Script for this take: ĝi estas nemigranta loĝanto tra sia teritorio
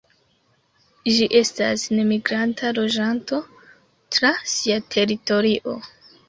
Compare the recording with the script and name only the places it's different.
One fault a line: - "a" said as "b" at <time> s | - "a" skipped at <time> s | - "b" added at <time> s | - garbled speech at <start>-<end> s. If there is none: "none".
none